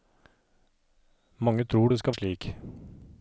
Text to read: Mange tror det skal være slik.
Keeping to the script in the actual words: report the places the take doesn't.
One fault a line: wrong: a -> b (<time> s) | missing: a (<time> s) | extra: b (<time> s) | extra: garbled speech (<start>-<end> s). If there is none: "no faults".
missing: være (2.1 s)